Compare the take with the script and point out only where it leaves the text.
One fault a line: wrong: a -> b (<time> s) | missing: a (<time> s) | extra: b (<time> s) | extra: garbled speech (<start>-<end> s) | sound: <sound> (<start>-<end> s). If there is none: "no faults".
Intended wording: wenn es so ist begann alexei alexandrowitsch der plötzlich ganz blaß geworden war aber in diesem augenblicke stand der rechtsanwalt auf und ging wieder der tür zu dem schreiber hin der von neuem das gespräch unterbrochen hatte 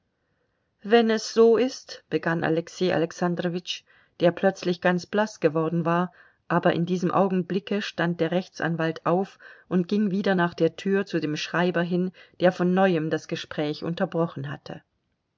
extra: nach (10.3 s)